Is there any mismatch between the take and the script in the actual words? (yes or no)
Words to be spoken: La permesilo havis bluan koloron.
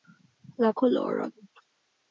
yes